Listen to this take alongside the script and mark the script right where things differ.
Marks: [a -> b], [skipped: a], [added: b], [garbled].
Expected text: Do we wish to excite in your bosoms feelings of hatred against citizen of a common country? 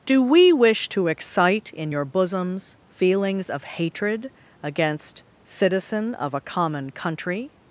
Do we wish to excite in your bosoms feelings of hatred against citizen of a common country?